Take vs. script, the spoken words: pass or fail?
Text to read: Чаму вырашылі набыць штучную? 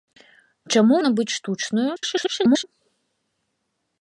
fail